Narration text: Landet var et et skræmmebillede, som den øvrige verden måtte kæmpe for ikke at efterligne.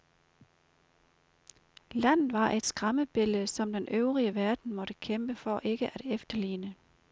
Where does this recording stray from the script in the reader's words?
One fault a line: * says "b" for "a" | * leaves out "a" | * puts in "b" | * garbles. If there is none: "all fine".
* leaves out "et"